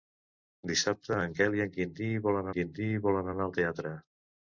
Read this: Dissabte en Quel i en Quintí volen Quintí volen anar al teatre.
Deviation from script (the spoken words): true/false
false